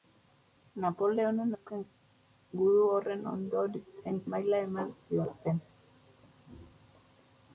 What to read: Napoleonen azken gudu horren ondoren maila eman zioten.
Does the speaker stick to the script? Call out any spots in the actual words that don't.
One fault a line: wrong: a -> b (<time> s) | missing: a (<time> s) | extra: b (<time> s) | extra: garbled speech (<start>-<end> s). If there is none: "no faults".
no faults